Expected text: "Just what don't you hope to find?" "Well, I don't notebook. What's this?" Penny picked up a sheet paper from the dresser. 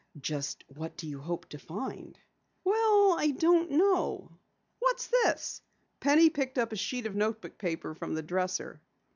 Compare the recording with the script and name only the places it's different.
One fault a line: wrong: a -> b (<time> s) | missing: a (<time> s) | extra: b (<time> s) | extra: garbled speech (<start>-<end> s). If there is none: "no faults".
wrong: don't -> do (1.0 s)
wrong: notebook -> know (3.7 s)
extra: of notebook (7.1 s)